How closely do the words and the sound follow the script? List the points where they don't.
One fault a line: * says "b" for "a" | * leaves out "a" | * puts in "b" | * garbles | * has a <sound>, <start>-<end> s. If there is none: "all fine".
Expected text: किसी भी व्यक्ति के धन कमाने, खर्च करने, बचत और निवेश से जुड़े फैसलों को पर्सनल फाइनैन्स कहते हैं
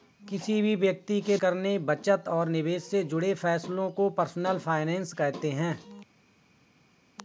* leaves out "धन कमाने खर्च"